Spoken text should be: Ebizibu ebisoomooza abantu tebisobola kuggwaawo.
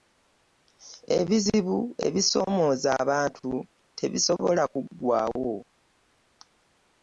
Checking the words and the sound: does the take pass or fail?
pass